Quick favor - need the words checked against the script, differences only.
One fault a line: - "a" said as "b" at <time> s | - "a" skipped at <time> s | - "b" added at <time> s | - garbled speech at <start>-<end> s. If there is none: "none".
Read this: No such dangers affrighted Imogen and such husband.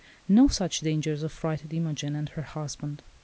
- "such" said as "her" at 2.3 s